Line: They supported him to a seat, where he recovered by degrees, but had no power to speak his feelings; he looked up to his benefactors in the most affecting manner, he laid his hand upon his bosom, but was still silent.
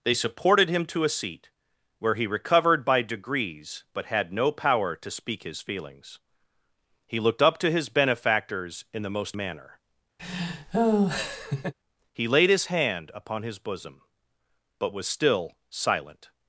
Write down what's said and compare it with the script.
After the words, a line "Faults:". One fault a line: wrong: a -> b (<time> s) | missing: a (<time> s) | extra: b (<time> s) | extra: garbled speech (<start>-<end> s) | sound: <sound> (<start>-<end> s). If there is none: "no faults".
They supported him to a seat, where he recovered by degrees, but had no power to speak his feelings; he looked up to his benefactors in the most manner, he laid his hand upon his bosom, but was still silent.
Faults:
missing: affecting (9.4 s)
sound: laugh (10.2-11.7 s)